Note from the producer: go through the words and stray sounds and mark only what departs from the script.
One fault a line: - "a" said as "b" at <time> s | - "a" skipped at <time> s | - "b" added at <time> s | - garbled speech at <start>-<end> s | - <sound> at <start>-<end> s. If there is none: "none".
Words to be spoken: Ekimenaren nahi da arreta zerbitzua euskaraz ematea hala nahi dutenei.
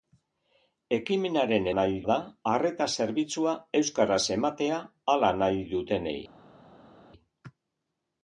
none